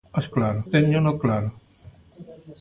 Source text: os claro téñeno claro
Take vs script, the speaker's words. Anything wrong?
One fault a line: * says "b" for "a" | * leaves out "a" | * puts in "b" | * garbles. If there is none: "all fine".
all fine